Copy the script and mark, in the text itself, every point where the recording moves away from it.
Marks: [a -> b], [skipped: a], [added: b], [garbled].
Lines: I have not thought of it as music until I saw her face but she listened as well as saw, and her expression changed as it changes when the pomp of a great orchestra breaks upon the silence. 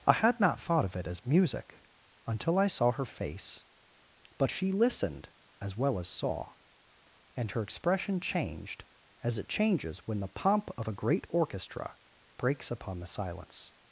I [have -> had] not thought of it as music until I saw her face but she listened as well as saw, and her expression changed as it changes when the pomp of a great orchestra breaks upon the silence.